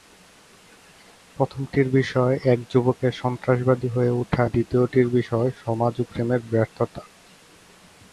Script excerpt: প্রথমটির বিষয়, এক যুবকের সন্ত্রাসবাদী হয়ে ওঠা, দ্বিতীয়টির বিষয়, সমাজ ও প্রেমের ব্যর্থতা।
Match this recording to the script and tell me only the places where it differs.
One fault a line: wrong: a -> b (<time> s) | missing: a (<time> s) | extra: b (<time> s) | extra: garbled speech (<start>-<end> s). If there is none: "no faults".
no faults